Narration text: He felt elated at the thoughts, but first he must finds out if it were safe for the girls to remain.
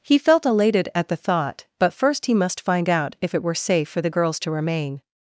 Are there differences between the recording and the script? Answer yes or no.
yes